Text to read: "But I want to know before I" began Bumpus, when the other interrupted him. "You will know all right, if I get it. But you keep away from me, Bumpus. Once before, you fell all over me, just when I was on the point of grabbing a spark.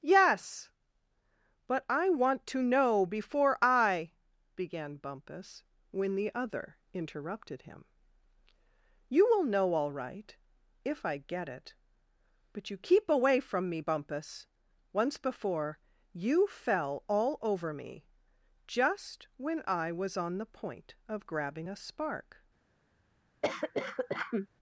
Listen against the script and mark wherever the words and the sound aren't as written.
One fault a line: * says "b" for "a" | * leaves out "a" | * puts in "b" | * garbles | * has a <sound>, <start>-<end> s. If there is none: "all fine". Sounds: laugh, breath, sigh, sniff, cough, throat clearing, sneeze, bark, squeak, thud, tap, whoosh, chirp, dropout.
* puts in "yes"
* has a cough, 23.4-24.5 s